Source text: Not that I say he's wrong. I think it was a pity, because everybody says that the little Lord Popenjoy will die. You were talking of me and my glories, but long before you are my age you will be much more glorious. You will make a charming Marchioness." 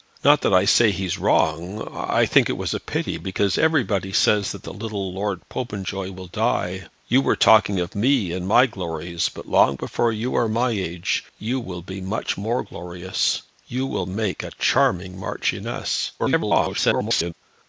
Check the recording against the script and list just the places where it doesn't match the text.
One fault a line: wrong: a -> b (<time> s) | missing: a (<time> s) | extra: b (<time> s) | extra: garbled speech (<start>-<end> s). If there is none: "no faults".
extra: garbled speech (16.2-17.3 s)